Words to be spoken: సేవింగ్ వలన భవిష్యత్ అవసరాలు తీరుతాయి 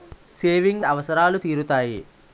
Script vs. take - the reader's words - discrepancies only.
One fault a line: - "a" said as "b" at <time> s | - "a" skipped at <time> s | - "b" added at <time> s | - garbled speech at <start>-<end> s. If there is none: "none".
- "వలన భవిష్యత్" skipped at 0.8 s